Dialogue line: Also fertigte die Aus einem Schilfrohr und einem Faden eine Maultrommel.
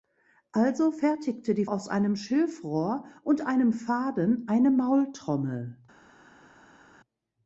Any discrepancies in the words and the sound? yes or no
no